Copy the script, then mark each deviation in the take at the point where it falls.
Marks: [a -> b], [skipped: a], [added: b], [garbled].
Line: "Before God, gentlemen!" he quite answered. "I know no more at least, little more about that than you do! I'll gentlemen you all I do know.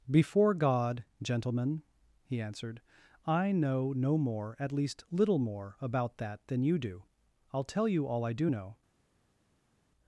"Before God, gentlemen!" he [skipped: quite] answered. "I know no more at least, little more about that than you do! I'll [gentlemen -> tell] you all I do know.